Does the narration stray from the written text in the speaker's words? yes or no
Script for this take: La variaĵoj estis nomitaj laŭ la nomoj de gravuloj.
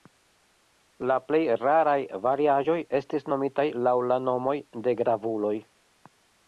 yes